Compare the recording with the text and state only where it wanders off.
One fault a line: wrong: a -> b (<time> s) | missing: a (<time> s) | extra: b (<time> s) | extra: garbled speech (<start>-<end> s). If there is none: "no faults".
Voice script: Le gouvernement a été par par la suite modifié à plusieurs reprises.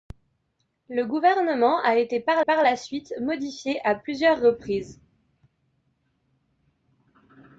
no faults